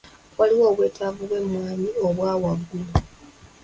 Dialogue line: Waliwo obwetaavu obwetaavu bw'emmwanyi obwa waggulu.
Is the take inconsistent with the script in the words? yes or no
yes